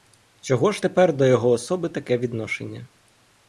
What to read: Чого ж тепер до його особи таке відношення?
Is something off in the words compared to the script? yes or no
no